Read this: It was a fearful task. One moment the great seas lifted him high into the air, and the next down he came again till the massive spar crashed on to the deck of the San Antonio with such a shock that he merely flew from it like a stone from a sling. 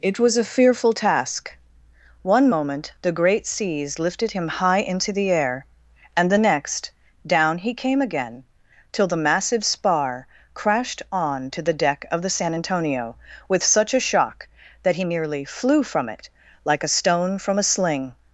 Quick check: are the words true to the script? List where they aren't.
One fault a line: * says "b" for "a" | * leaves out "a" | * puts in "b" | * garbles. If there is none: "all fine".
all fine